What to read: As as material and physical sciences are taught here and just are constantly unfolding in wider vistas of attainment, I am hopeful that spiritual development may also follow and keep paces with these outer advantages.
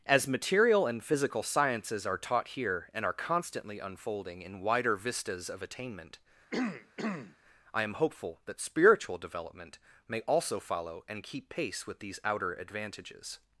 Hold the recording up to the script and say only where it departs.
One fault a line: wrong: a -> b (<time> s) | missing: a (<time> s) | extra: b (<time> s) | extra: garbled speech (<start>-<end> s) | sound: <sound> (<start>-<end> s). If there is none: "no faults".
missing: as (0.3 s)
missing: just (3.0 s)
sound: throat clearing (6.5-7.4 s)
wrong: paces -> pace (11.5 s)